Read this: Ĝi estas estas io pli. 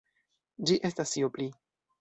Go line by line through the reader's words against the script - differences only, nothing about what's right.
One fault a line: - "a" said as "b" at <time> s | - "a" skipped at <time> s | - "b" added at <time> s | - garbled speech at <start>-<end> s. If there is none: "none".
- "estas" skipped at 1.1 s